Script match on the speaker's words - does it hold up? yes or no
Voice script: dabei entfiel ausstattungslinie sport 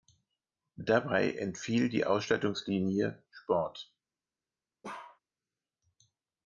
no